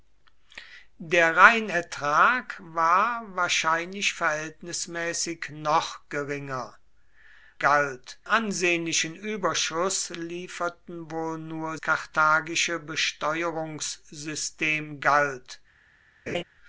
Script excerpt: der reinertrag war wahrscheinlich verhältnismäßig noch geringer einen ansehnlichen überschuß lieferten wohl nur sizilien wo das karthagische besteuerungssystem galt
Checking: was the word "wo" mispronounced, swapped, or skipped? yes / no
yes